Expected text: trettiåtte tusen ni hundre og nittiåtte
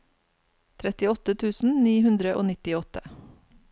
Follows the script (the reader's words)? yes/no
yes